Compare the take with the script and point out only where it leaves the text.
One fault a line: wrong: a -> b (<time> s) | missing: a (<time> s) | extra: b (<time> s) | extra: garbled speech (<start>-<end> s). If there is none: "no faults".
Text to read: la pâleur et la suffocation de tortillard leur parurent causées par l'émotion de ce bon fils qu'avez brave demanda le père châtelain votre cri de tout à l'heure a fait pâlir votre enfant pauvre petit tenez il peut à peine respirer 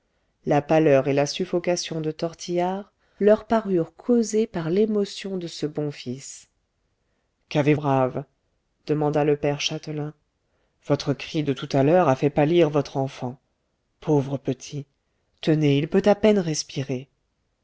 no faults